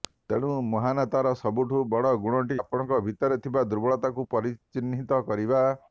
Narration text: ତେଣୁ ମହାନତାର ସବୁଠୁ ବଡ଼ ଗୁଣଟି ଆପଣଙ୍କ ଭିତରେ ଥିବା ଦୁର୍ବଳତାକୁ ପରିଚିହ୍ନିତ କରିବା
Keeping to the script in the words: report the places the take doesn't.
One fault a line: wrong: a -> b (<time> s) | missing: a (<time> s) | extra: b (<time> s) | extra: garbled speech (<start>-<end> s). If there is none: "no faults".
no faults